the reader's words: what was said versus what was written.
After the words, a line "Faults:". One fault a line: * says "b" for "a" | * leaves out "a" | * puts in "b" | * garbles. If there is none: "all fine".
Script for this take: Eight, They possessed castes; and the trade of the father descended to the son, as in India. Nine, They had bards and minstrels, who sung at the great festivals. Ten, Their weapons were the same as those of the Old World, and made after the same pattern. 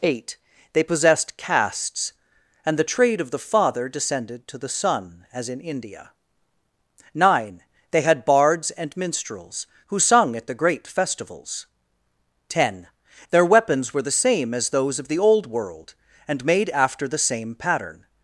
Eight, They possessed castes; and the trade of the father descended to the son, as in India. Nine, They had bards and minstrels, who sung at the great festivals. Ten, Their weapons were the same as those of the Old World, and made after the same pattern.
Faults:
all fine